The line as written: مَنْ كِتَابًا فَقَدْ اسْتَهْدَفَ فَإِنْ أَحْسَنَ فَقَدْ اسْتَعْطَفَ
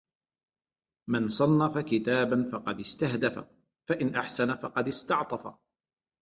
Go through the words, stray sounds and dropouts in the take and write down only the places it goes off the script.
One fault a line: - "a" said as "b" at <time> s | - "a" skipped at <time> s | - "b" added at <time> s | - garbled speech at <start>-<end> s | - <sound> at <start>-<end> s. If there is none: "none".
- "صَنَّفَ" added at 1.3 s